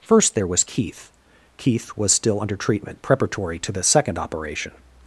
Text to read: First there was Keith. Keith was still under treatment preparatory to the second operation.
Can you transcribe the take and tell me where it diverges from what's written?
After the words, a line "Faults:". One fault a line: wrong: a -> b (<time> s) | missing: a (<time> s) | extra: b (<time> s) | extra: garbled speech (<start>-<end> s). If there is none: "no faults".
First there was Keith. Keith was still under treatment preparatory to the second operation.
Faults:
no faults